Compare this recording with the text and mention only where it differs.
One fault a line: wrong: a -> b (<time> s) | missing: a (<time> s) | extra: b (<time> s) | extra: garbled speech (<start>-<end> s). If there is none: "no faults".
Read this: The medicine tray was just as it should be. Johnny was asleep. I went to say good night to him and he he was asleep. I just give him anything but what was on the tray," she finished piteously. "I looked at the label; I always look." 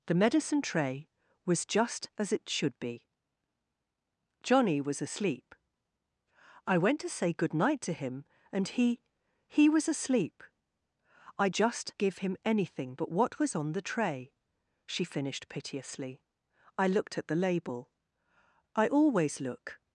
no faults